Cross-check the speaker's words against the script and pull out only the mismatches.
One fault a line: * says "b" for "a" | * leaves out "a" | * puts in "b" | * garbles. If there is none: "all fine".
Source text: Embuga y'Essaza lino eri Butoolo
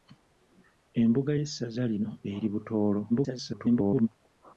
* garbles